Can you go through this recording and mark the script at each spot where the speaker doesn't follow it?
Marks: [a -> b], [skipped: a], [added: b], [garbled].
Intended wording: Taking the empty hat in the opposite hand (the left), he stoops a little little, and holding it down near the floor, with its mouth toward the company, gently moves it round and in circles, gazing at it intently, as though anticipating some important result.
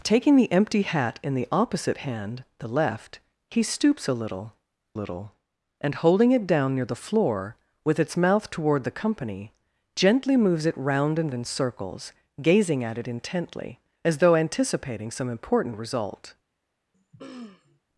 Taking the empty hat in the opposite hand (the left), he stoops a little little, and holding it down near the floor, with its mouth toward the company, gently moves it round and in circles, gazing at it intently, as though anticipating some important result.